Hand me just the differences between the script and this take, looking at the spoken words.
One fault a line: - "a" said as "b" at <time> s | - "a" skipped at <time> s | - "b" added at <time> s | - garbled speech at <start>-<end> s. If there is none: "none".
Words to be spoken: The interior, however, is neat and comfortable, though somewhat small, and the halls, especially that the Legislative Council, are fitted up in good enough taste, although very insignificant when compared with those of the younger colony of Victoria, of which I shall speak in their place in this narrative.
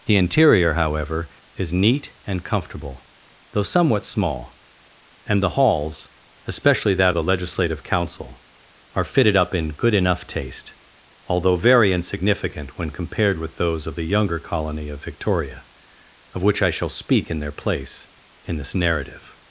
none